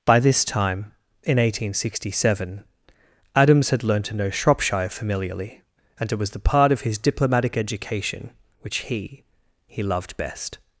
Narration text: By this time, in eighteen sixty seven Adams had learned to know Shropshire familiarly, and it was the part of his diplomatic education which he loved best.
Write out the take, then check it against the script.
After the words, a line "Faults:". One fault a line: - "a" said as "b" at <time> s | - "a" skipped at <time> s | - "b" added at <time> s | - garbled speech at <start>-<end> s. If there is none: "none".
By this time, in eighteen sixty seven Adams had learned to know Shropshire familiarly, and it was the part of his diplomatic education which he he loved best.
Faults:
- "he" added at 9.7 s